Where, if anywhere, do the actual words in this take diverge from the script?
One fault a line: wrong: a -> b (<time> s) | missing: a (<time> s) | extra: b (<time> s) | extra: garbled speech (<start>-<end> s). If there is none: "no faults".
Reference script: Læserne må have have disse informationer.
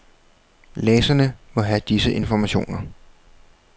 missing: have (1.8 s)